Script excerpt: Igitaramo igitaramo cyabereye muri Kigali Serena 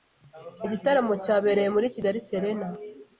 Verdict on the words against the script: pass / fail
fail